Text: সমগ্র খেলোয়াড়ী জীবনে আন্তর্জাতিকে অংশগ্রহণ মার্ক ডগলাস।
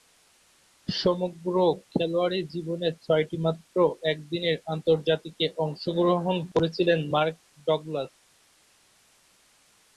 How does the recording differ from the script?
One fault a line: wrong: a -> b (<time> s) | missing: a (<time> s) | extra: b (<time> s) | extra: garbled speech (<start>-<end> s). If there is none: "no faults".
extra: ছয়টিমাত্র একদিনের (3.0 s)
extra: করেছিলেন (6.5 s)